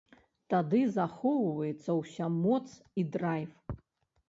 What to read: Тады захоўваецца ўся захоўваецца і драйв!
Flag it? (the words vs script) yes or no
yes